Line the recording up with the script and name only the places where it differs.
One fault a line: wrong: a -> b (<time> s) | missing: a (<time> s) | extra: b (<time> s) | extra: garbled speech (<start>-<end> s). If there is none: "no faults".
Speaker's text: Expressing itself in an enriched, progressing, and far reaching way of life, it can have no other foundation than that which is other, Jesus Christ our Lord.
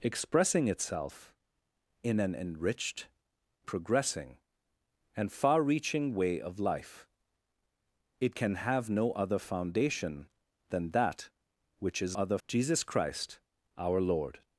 no faults